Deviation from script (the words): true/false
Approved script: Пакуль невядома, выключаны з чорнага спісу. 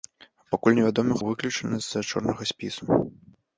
false